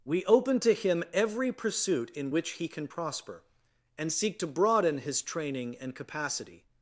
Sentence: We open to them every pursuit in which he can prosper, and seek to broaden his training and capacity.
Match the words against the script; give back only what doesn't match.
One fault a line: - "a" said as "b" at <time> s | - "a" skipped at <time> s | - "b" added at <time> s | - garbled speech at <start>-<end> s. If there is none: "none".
- "them" said as "him" at 0.7 s